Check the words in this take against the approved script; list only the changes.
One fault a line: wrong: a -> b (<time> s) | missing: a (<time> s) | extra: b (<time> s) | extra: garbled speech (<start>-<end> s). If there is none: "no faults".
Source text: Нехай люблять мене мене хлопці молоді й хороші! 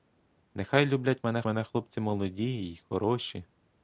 no faults